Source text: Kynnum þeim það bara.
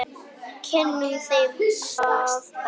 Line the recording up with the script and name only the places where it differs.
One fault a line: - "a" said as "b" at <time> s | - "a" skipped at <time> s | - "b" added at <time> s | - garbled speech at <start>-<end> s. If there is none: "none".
none